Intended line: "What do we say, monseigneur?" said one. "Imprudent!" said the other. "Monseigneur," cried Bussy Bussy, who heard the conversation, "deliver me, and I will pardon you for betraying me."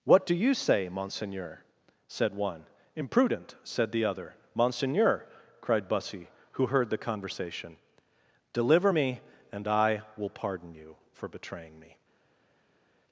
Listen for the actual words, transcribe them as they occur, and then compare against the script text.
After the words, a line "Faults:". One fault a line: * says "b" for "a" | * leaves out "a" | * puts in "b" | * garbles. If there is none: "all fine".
"What do you say, monseigneur?" said one. "Imprudent!" said the other. "Monseigneur," cried Bussy, who heard the conversation, "deliver me, and I will pardon you for betraying me."
Faults:
* says "you" for "we"
* leaves out "Bussy"